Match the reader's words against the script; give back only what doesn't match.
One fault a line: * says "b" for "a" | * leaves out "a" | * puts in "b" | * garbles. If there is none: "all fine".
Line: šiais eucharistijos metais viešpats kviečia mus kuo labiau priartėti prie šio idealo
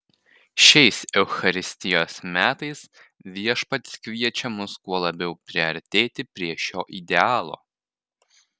all fine